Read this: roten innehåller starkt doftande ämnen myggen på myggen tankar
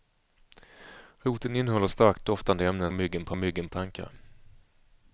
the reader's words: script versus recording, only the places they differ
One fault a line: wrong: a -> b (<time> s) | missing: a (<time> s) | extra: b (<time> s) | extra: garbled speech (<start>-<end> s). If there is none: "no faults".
no faults